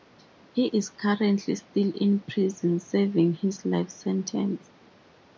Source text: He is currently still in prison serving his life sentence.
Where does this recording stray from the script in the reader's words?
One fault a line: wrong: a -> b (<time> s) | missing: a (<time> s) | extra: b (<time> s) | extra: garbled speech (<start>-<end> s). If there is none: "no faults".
no faults